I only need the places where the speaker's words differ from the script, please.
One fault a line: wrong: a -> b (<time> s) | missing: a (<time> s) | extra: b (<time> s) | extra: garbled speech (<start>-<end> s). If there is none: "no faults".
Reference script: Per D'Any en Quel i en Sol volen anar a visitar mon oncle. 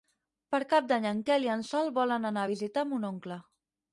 extra: Cap (0.7 s)